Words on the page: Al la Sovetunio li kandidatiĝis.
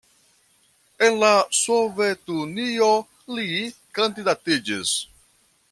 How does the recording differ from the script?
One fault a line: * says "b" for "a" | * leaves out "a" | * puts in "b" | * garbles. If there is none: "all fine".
* says "En" for "Al"